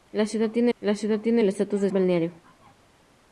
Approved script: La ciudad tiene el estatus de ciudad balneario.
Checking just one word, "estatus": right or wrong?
right